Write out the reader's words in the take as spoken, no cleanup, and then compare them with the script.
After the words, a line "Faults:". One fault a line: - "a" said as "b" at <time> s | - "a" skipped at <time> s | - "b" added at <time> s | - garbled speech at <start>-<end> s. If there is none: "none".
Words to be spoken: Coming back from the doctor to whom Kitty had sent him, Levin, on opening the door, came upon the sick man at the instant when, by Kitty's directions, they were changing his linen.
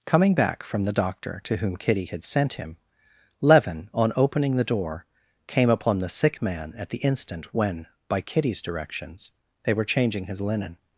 Coming back from the doctor to whom Kitty had sent him, Levin, on opening the door, came upon the sick man at the instant when, by Kitty's directions, they were changing his linen.
Faults:
none